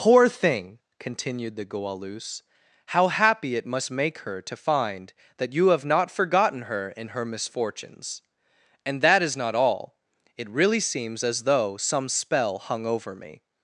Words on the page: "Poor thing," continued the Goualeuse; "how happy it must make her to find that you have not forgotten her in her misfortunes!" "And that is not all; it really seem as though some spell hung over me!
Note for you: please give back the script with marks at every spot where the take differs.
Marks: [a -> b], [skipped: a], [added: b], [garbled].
"Poor thing," continued the Goualeuse; "how happy it must make her to find that you have not forgotten her in her misfortunes!" "And that is not all; it really [seem -> seems] as though some spell hung over me!